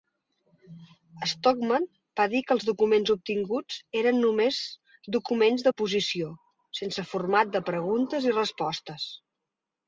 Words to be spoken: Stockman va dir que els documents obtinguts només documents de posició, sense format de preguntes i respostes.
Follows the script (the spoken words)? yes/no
no